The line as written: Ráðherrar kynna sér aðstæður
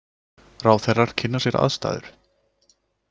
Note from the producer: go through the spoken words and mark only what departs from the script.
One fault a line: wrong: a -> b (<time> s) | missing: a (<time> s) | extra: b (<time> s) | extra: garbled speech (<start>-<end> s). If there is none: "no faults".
no faults